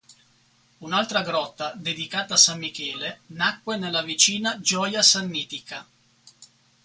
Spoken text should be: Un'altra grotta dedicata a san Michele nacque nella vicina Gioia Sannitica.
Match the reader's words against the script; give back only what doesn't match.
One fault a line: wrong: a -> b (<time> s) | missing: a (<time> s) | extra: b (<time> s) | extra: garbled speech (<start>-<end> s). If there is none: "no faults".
no faults